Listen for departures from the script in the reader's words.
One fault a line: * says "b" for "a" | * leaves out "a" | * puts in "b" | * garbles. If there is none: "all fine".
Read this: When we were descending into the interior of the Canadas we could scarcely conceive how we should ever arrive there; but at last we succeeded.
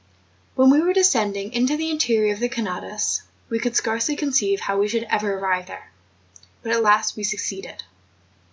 all fine